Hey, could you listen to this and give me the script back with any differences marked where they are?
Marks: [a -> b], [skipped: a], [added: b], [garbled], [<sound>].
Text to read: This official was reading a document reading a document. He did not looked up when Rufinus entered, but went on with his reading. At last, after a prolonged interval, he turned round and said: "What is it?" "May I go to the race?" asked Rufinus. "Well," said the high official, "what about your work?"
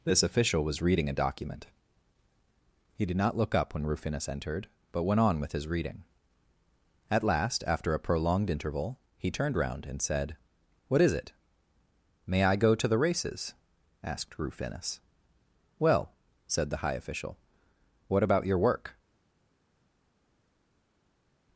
This official was reading a document [skipped: reading a document.] He did not [looked -> look] up when Rufinus entered, but went on with his reading. At last, after a prolonged interval, he turned round and said: "What is it?" "May I go to the [race?" -> races] asked Rufinus. "Well," said the high official, "what about your work?"